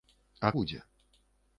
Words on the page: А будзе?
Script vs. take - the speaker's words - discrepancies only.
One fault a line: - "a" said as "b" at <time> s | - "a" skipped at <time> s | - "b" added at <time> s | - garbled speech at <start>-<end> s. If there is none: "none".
none